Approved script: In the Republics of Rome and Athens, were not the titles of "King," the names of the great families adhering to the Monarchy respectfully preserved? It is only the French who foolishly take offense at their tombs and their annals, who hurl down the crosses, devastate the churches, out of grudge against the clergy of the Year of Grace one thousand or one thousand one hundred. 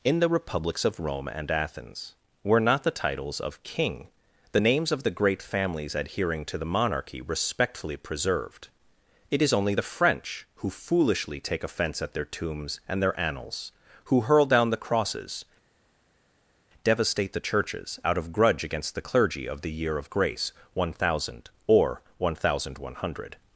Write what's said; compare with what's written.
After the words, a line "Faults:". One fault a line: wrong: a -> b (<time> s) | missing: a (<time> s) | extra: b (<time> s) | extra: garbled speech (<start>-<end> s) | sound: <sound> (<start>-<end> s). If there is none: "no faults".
In the Republics of Rome and Athens, were not the titles of "King," the names of the great families adhering to the Monarchy respectfully preserved? It is only the French who foolishly take offense at their tombs and their annals, who hurl down the crosses, devastate the churches, out of grudge against the clergy of the Year of Grace one thousand or one thousand one hundred.
Faults:
no faults